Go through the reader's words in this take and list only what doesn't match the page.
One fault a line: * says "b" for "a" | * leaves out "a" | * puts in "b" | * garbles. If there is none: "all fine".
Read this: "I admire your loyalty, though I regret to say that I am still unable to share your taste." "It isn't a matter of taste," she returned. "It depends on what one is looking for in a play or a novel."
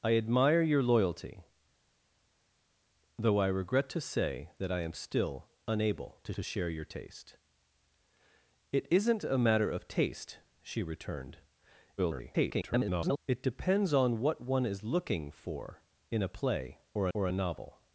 * puts in "to"
* garbles
* puts in "or"